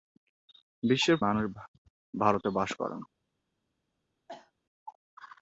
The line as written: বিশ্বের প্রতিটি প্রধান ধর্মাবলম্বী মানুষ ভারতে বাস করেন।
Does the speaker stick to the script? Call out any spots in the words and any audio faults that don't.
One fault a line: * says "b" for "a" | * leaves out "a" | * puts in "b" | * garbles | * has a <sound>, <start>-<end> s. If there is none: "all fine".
* leaves out "প্রতিটি প্রধান ধর্মাবলম্বী"
* has a cough, 4.3-4.5 s